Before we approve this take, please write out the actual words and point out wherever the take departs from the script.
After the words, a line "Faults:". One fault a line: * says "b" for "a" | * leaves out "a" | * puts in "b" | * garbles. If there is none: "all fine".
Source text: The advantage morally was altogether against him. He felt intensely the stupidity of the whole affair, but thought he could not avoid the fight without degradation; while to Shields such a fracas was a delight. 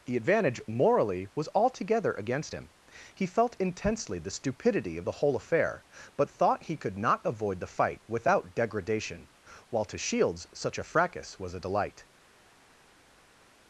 The advantage morally was altogether against him. He felt intensely the stupidity of the whole affair, but thought he could not avoid the fight without degradation; while to Shields such a fracas was a delight.
Faults:
all fine